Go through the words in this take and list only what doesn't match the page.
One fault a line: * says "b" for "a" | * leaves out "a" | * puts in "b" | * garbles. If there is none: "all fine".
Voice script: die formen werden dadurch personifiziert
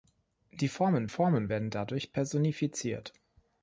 * puts in "formen"